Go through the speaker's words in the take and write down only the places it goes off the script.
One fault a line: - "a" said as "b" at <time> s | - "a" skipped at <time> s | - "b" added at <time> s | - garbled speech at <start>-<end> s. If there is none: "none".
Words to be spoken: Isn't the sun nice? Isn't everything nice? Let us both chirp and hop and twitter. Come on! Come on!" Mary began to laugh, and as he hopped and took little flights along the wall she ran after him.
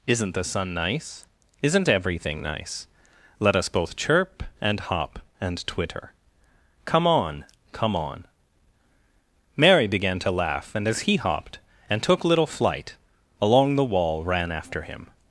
- "flights" said as "flight" at 12.5 s
- "she" skipped at 14.2 s